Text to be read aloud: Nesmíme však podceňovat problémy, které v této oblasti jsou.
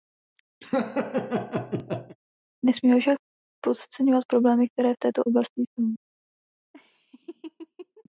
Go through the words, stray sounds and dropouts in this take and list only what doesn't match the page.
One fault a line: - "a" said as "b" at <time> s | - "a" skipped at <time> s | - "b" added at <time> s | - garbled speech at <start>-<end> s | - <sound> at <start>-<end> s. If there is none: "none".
- laugh at 0.6-2.2 s
- laugh at 6.7-8.0 s